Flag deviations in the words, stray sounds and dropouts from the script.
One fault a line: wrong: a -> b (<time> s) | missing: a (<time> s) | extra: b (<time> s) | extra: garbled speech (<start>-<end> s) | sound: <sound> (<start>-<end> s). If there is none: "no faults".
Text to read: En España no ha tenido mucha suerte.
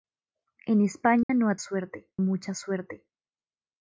sound: dropout (1.2-1.3 s)
wrong: tenido -> suerte (1.6 s)